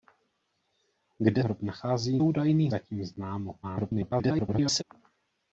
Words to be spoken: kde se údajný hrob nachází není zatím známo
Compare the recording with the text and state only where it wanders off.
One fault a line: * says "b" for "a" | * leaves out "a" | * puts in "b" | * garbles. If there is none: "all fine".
* leaves out "se údajný"
* says "údajný" for "není"
* garbles